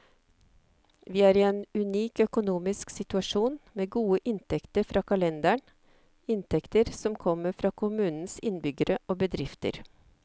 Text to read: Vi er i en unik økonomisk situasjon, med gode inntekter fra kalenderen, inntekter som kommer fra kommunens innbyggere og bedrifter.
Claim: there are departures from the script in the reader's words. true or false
false